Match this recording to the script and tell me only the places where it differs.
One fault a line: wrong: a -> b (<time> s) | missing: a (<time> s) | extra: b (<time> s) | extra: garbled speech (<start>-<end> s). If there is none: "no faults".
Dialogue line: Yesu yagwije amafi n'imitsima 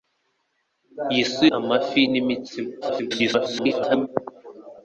missing: yagwije (1.4 s)
extra: garbled speech (2.8-4.1 s)